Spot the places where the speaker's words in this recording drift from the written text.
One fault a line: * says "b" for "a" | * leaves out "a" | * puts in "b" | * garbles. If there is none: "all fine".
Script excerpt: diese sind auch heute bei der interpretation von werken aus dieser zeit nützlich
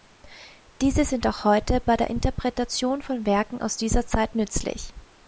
all fine